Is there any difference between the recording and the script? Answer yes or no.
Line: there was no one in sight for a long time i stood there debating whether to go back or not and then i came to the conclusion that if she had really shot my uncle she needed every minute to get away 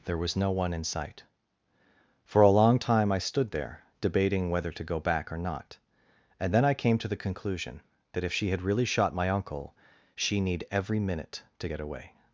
yes